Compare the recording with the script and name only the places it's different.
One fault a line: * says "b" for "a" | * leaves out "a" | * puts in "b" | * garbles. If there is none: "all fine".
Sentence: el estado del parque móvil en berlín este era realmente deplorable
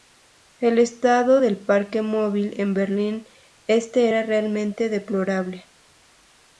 all fine